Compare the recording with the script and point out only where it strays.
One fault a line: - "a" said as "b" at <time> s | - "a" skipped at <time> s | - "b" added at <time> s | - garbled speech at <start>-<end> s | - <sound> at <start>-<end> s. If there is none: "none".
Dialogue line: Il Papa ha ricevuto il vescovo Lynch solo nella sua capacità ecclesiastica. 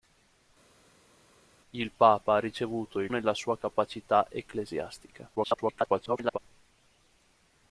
- "vescovo Lynch solo" skipped at 3.1 s
- garbled speech at 5.3-6.4 s